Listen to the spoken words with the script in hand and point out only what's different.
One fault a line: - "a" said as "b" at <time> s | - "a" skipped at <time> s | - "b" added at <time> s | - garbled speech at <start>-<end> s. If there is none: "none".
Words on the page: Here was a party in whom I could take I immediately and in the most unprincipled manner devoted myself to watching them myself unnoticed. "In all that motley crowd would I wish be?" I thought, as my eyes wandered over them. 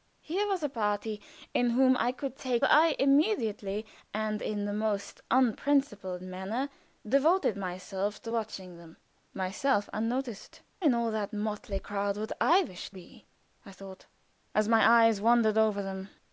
none